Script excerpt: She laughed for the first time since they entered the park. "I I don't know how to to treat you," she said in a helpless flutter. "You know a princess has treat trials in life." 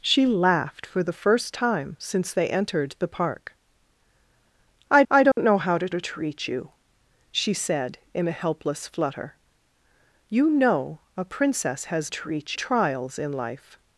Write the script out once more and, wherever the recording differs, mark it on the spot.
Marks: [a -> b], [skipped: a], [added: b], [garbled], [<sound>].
She laughed for the first time since they entered the park. "I I don't [dropout] know how to to treat you," she said in a helpless flutter. "You know a princess has treat trials in life."